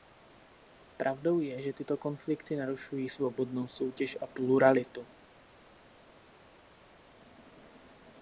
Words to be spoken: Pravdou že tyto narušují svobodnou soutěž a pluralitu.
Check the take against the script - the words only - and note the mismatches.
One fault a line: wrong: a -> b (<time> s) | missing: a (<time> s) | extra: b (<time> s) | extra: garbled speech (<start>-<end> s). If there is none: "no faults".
extra: je (1.4 s)
extra: konflikty (2.0 s)